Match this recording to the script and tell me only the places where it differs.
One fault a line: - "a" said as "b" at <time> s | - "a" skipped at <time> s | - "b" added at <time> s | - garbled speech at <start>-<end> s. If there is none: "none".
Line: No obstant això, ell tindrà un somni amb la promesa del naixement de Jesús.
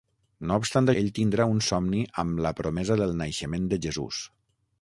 - "això" skipped at 0.9 s